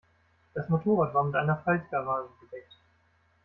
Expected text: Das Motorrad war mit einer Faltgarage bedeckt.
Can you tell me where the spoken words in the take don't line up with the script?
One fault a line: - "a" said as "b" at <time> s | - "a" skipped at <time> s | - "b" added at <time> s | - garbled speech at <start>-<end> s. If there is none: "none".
none